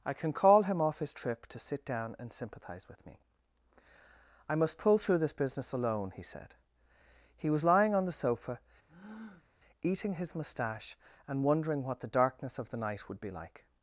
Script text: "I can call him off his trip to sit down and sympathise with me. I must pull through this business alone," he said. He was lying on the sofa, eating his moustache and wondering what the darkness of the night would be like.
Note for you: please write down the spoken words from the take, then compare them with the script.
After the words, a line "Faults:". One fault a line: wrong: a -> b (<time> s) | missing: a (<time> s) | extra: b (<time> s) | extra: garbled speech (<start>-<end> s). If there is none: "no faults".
"I can call him off his trip to sit down and sympathise with me. I must pull through this business alone," he said. He was lying on the sofa, eating his moustache and wondering what the darkness of the night would be like.
Faults:
no faults